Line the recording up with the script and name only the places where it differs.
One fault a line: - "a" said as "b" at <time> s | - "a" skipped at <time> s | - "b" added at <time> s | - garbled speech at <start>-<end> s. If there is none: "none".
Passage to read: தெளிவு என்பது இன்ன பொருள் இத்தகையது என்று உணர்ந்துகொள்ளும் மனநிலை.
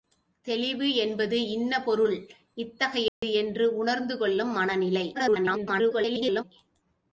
- garbled speech at 5.1-6.4 s